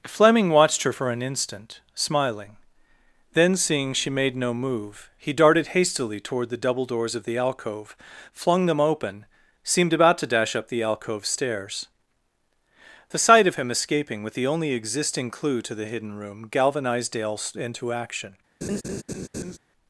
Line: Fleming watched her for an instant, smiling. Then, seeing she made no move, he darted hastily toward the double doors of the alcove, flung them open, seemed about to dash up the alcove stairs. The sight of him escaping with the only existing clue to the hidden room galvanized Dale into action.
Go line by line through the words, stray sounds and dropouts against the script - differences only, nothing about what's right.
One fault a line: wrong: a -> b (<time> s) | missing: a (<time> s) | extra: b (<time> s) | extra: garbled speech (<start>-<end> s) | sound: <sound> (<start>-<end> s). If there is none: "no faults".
sound: laugh (18.6-19.6 s)